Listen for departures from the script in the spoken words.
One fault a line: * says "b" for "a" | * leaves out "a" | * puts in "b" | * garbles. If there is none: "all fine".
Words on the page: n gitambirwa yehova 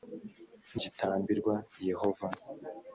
all fine